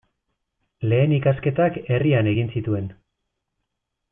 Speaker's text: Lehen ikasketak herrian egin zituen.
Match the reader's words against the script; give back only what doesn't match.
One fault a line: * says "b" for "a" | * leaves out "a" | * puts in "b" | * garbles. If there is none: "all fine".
all fine